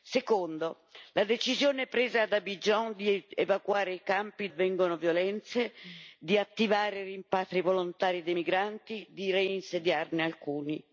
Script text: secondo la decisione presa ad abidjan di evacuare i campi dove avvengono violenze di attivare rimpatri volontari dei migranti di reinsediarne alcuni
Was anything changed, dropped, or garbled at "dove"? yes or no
yes